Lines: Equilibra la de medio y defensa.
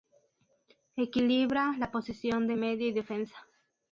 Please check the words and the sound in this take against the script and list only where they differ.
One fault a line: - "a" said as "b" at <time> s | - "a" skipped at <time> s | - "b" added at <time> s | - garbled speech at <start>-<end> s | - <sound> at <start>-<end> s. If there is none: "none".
- "posición" added at 1.9 s